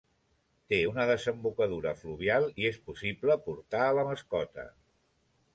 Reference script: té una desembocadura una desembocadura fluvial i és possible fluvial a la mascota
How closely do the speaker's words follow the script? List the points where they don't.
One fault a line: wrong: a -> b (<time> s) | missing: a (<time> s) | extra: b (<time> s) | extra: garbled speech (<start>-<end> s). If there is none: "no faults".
missing: una desembocadura (1.9 s)
wrong: fluvial -> portar (3.5 s)